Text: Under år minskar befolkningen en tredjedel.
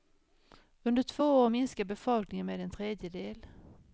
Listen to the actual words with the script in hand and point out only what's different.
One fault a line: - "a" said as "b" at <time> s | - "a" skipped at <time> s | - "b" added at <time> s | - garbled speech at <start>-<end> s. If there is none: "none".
- "två" added at 1.0 s
- "med" added at 2.5 s